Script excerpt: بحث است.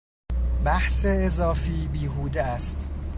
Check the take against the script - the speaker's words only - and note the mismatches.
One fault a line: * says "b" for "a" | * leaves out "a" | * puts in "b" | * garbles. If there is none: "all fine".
* puts in "اضافی بیهوده"